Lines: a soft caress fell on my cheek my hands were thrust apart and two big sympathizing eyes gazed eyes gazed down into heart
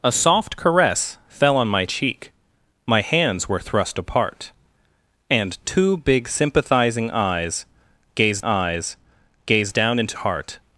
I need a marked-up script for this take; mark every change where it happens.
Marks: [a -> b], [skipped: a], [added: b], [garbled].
a soft caress fell on my cheek my hands were thrust apart and two big sympathizing eyes gazed eyes gazed down into heart